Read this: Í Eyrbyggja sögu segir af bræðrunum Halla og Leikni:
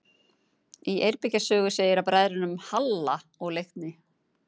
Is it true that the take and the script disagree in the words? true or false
false